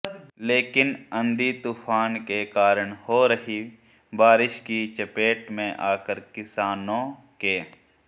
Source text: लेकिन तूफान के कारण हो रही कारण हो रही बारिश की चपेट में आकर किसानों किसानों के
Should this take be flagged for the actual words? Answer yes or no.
yes